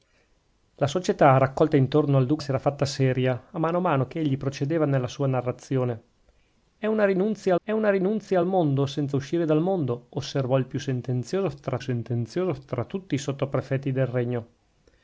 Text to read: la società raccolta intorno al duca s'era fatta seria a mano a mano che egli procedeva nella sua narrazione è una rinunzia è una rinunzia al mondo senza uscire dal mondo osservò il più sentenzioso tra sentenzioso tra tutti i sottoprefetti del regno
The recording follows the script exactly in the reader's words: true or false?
true